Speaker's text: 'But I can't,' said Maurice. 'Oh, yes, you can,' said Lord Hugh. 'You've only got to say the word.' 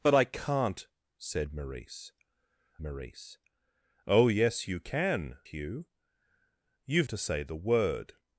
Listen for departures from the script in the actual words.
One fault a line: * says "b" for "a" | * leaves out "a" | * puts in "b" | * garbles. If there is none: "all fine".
* puts in "Maurice"
* leaves out "said Lord"
* leaves out "only got"